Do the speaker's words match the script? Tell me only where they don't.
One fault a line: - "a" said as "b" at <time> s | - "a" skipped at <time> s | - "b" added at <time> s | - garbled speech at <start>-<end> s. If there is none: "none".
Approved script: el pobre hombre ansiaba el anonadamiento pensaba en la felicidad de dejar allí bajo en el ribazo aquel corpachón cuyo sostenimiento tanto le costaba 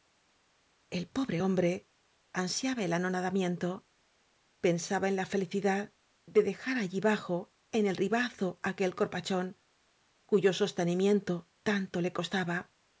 none